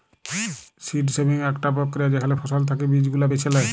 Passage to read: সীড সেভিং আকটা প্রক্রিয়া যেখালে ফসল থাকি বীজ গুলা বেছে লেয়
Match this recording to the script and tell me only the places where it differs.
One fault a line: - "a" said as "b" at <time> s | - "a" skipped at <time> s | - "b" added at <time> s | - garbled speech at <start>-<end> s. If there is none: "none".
none